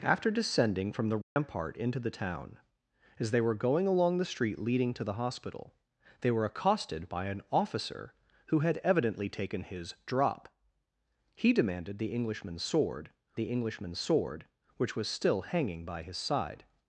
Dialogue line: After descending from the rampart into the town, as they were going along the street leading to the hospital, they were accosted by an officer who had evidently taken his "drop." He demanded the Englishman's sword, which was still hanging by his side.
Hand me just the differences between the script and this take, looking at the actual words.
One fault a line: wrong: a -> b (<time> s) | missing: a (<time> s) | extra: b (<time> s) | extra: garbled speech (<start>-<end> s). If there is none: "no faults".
extra: the Englishman's sword (13.4 s)